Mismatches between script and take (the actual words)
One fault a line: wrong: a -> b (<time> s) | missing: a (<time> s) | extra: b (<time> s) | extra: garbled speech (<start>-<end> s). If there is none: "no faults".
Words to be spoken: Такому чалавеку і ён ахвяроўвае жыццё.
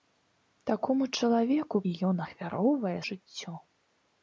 no faults